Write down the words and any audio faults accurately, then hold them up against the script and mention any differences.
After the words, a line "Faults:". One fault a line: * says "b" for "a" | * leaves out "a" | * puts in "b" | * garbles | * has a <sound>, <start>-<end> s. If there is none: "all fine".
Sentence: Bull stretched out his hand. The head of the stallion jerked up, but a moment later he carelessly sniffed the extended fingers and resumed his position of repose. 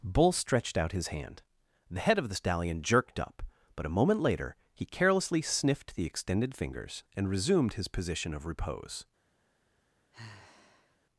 Bull stretched out his hand. The head of the stallion jerked up, but a moment later he carelessly sniffed the extended fingers and resumed his position of repose.
Faults:
* has a sigh, 10.1-11.0 s